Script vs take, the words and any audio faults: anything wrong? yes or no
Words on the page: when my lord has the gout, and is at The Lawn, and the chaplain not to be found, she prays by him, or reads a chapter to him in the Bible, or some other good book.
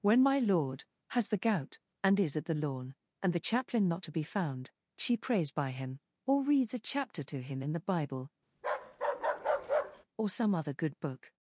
yes